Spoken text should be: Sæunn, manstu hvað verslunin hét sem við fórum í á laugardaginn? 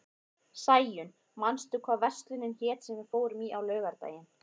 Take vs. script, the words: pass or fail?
pass